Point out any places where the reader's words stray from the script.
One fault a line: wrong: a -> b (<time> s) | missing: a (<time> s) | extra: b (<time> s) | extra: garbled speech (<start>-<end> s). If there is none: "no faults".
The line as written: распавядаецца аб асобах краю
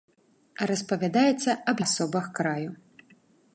no faults